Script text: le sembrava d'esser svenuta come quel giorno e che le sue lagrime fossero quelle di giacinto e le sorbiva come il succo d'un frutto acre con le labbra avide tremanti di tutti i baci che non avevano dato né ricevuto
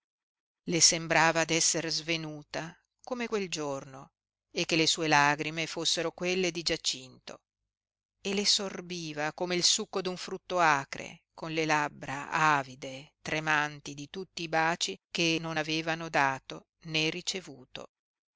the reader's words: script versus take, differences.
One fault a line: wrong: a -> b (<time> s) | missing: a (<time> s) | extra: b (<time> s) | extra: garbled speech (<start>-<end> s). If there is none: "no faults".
no faults